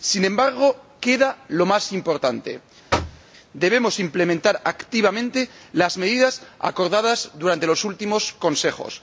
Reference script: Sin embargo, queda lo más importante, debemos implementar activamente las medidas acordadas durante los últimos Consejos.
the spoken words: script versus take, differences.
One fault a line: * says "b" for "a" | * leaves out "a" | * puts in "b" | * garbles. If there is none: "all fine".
all fine